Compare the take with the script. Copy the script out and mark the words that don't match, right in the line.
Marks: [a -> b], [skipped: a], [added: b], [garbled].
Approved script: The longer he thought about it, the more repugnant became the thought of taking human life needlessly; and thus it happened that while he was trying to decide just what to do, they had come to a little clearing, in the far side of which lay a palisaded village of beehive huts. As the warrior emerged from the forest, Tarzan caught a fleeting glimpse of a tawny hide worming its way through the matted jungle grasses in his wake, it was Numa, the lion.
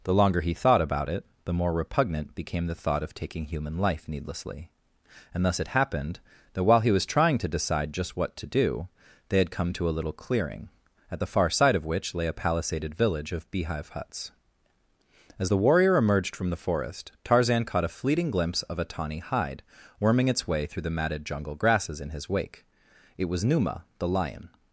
The longer he thought about it, the more repugnant became the thought of taking human life needlessly; and thus it happened that while he was trying to decide just what to do, they had come to a little clearing, [in -> at] the far side of which lay a palisaded village of beehive huts. As the warrior emerged from the forest, Tarzan caught a fleeting glimpse of a tawny hide worming its way through the matted jungle grasses in his wake, it was Numa, the lion.